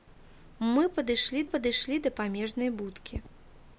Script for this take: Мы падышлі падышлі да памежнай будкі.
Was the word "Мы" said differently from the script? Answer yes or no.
no